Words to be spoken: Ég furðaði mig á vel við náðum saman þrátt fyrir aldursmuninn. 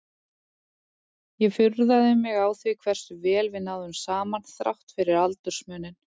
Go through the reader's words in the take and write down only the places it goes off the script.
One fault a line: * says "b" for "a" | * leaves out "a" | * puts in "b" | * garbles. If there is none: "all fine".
* puts in "því hversu"